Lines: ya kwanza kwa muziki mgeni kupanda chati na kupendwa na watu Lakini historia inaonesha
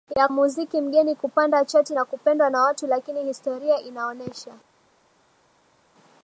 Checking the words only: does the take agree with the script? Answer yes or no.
no